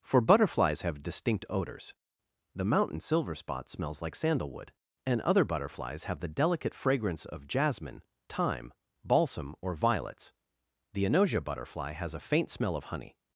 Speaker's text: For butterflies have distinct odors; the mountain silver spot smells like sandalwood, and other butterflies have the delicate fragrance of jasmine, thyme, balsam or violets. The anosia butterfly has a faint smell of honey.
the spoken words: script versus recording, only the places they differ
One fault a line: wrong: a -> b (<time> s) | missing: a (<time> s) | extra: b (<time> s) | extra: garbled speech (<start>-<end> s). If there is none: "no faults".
no faults